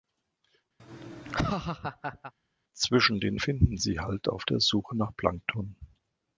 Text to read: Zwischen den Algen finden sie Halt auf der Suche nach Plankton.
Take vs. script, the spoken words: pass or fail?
fail